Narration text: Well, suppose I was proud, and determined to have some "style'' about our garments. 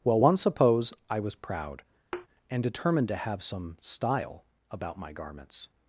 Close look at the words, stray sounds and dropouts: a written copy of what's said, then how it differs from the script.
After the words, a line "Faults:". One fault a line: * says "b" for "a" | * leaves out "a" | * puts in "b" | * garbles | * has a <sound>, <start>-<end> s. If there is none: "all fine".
Well, one suppose I was proud, and determined to have some "style'' about my garments.
Faults:
* puts in "one"
* has a thud, 2.1-2.3 s
* says "my" for "our"